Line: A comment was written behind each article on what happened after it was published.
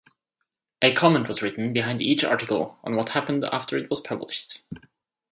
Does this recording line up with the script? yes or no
yes